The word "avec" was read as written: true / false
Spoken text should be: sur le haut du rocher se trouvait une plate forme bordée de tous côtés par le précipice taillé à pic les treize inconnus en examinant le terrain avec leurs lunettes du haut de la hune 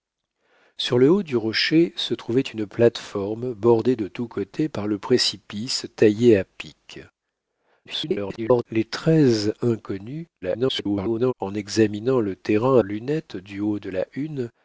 false